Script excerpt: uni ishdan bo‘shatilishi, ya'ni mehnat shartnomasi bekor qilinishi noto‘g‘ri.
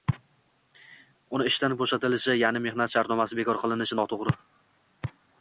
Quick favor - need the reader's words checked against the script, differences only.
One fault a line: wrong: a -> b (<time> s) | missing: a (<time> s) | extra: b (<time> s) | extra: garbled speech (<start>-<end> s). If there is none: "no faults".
no faults